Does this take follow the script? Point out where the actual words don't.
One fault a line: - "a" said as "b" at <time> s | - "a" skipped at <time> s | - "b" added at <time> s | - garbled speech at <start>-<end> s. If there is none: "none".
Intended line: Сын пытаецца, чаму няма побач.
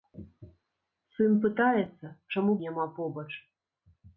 none